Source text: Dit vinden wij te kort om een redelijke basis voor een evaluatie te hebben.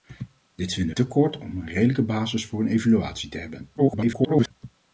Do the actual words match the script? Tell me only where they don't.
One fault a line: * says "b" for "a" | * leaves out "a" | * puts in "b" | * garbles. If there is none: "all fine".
* leaves out "wij"
* garbles